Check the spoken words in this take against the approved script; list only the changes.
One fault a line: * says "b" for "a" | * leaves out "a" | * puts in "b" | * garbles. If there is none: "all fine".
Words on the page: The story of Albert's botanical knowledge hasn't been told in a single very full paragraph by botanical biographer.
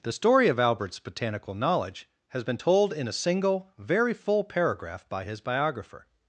* says "has" for "hasn't"
* says "his" for "botanical"